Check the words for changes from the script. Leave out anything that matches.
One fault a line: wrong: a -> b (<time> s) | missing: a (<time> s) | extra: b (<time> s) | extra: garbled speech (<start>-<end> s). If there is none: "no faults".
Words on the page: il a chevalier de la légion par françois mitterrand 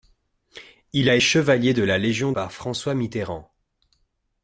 no faults